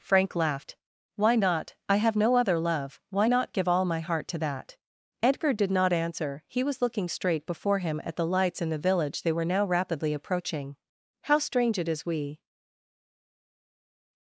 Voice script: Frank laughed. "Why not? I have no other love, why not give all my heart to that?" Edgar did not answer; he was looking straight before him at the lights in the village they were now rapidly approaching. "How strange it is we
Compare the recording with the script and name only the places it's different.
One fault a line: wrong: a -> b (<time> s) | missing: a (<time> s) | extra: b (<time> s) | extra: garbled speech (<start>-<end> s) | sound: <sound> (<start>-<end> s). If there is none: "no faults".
no faults